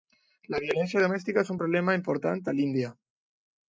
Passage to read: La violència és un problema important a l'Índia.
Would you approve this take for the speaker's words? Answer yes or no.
no